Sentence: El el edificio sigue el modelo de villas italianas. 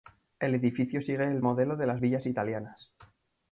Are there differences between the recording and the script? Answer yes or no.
yes